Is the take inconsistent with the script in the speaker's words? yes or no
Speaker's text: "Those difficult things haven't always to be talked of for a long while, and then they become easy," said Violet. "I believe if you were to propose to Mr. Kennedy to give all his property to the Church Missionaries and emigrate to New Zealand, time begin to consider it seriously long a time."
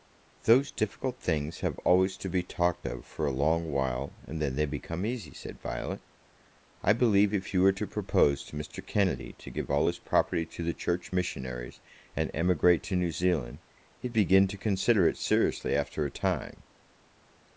yes